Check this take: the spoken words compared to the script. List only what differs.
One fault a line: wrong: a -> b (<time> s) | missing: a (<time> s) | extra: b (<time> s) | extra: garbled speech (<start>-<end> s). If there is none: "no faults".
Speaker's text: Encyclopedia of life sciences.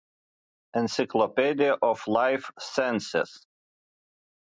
no faults